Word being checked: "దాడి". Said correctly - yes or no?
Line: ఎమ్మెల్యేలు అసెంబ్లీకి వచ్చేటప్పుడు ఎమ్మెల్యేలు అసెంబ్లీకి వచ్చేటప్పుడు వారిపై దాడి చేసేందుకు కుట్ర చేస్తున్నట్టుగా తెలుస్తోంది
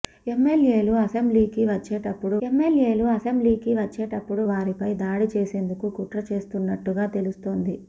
yes